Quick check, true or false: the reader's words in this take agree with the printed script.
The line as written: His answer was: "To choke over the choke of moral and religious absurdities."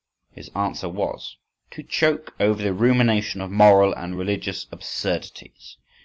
false